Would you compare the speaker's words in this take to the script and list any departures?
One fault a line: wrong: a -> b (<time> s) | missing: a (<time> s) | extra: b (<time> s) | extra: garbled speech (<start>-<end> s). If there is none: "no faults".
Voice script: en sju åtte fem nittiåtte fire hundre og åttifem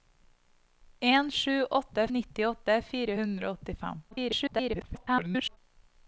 missing: fem (2.1 s)
extra: garbled speech (4.1-5.6 s)